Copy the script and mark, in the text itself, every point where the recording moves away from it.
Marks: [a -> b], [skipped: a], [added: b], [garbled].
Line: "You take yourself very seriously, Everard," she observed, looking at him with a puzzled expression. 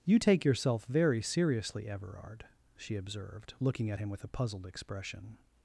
"You take yourself very seriously, Everard," she observed, looking at him with a puzzled expression.